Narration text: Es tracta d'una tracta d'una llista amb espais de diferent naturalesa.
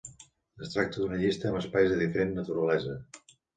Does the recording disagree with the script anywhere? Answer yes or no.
yes